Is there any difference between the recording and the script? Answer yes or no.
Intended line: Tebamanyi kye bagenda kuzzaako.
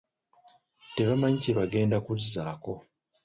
no